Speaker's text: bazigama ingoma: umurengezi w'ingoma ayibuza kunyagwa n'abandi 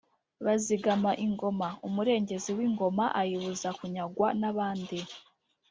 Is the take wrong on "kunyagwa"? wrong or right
right